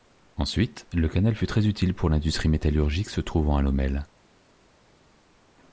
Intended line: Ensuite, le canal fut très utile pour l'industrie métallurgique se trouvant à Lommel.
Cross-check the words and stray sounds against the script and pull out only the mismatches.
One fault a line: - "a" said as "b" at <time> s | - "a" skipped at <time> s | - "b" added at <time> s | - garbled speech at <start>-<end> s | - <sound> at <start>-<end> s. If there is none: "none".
none